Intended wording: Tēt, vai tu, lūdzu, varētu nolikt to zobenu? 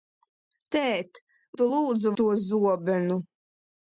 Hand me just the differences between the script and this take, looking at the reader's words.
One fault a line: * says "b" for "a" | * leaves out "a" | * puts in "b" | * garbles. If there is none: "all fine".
* leaves out "vai"
* leaves out "varētu nolikt"